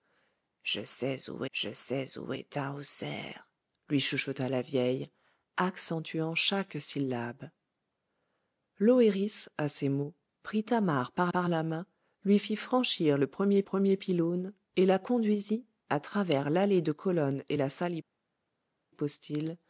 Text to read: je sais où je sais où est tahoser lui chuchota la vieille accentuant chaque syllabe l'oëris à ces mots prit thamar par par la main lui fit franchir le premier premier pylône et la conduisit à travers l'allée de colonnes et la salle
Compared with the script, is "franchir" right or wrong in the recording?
right